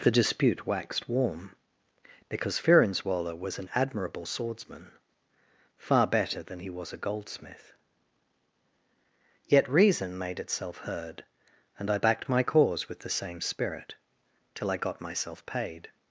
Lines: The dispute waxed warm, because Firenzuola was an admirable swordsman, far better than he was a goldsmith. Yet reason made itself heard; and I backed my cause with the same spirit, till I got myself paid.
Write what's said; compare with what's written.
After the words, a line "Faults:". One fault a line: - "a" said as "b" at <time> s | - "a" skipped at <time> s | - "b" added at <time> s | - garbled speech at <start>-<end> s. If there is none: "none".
The dispute waxed warm, because Firenzuola was an admirable swordsman, far better than he was a goldsmith. Yet reason made itself heard; and I backed my cause with the same spirit, till I got myself paid.
Faults:
none